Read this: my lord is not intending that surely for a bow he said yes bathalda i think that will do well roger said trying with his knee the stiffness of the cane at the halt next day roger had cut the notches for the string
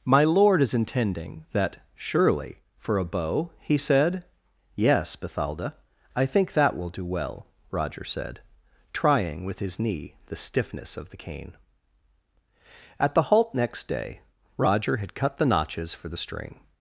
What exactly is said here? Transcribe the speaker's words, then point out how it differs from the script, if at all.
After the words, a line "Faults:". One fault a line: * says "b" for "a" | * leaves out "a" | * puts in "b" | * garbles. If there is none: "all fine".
my lord is intending that surely for a bow he said yes bathalda i think that will do well roger said trying with his knee the stiffness of the cane at the halt next day roger had cut the notches for the string
Faults:
* leaves out "not"